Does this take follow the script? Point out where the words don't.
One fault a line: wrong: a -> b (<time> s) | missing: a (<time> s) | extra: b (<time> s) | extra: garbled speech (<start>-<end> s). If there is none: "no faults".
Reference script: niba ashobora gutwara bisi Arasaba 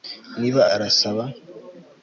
missing: ashobora gutwara bisi (0.6 s)